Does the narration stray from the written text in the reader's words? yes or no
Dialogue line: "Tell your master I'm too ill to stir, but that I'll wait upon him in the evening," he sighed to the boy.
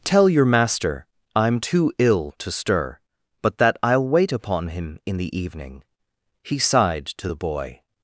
no